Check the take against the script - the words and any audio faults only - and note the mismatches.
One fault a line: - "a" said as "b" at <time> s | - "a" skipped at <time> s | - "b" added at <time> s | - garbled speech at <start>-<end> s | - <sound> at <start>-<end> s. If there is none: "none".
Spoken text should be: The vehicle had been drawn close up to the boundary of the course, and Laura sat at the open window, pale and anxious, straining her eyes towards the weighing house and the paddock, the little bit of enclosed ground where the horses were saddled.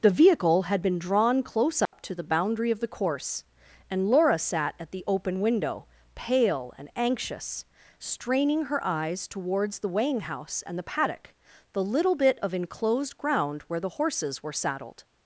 - dropout at 1.9-1.9 s